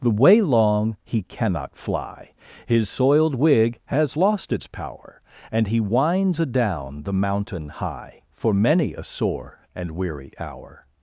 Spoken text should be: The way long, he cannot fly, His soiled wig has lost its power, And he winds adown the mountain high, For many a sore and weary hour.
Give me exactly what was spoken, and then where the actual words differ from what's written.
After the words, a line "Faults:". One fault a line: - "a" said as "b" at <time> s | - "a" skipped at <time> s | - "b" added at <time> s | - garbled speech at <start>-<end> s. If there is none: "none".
The way long, he cannot fly, His soiled wig has lost its power, And he winds adown the mountain high, For many a sore and weary hour.
Faults:
none